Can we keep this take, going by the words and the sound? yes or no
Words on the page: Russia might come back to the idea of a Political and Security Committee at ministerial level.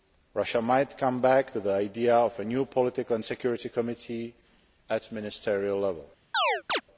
no